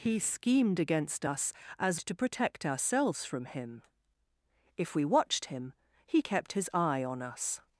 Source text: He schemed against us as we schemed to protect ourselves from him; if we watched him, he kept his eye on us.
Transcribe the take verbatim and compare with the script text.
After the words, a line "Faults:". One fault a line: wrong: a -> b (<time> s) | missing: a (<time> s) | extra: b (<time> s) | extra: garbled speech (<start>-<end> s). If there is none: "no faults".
He schemed against us as to protect ourselves from him; if we watched him, he kept his eye on us.
Faults:
missing: we schemed (2.0 s)